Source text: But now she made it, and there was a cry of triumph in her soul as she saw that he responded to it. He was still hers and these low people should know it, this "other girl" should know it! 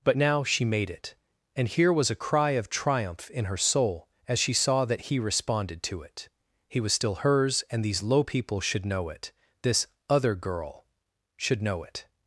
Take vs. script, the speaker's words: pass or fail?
fail